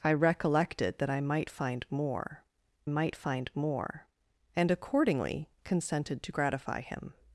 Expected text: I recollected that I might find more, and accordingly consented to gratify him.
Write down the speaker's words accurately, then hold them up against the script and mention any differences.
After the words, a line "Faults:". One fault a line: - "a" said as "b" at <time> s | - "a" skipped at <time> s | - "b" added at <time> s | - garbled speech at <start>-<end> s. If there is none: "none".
I recollected that I might find more might find more, and accordingly consented to gratify him.
Faults:
- "might find more" added at 2.9 s